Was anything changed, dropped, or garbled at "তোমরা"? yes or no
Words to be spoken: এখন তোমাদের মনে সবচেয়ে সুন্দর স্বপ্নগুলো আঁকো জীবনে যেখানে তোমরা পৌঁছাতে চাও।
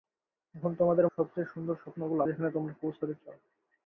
no